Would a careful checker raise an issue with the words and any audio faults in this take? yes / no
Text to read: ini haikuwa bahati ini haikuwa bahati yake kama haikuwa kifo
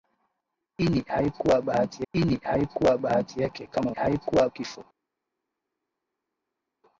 no